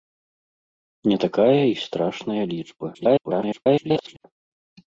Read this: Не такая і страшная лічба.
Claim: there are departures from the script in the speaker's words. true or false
true